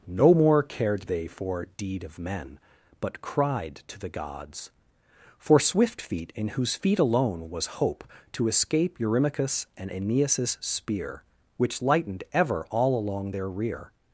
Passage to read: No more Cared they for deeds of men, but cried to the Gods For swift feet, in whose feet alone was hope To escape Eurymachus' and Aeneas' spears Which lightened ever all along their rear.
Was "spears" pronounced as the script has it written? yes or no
no